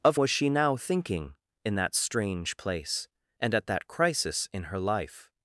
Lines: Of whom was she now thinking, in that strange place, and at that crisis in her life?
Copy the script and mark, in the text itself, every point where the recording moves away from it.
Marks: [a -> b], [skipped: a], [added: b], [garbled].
Of [skipped: whom] was she now thinking, in that strange place, and at that crisis in her life?